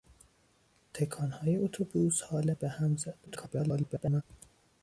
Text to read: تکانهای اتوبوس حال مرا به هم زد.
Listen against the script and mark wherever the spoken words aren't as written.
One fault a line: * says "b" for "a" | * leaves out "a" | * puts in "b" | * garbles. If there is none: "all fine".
* leaves out "مرا"
* garbles